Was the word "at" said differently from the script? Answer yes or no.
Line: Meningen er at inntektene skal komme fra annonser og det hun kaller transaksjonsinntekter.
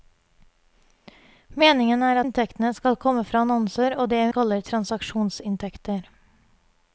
yes